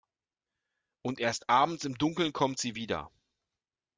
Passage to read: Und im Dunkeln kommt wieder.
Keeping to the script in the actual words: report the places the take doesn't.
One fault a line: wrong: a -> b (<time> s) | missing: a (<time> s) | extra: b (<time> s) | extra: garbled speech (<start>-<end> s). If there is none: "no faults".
extra: erst abends (1.2 s)
extra: sie (2.6 s)